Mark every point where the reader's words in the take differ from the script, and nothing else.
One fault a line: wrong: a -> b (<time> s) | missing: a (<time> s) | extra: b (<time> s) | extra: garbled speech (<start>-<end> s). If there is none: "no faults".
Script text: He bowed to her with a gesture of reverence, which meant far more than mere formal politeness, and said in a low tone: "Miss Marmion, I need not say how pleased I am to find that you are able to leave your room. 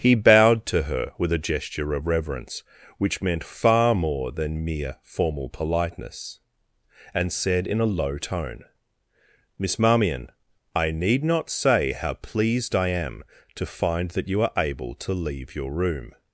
no faults